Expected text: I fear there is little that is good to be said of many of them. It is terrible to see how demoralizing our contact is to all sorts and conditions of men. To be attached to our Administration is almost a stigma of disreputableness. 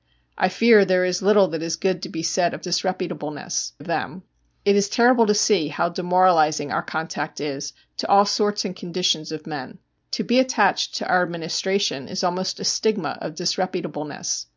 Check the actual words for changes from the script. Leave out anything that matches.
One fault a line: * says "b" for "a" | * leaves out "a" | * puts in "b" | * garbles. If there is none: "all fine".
* says "disreputableness" for "many"